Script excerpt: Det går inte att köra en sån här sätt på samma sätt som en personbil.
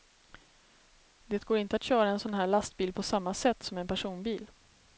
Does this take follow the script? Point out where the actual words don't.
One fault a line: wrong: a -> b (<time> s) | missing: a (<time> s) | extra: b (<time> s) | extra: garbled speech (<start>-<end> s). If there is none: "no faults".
wrong: sätt -> lastbil (2.5 s)